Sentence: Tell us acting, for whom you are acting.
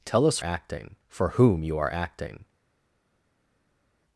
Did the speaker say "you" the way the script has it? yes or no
yes